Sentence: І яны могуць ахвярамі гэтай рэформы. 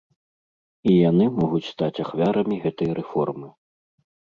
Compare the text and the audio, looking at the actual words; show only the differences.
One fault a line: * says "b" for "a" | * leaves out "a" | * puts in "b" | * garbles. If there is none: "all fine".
* puts in "стаць"